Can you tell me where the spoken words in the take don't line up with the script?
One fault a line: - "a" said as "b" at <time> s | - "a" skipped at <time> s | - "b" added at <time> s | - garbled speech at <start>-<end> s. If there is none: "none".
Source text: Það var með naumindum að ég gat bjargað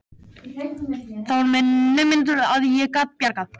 none